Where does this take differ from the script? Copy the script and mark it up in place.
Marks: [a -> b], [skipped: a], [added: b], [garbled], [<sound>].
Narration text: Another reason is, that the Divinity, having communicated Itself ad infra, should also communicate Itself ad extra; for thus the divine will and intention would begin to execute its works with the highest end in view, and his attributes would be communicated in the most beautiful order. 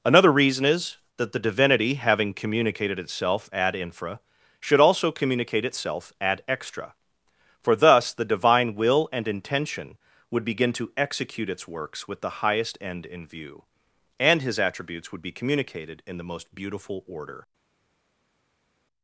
Another reason is, that the Divinity, having communicated Itself ad infra, should also communicate Itself ad extra; for thus the divine will and intention would begin to execute its works with the highest end in view, and his attributes would be communicated in the most beautiful order.